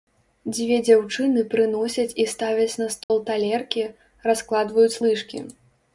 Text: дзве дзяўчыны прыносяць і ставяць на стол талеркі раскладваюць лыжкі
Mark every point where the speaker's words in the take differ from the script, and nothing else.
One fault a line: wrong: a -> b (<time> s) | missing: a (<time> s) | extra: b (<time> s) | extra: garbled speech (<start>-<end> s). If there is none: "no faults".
no faults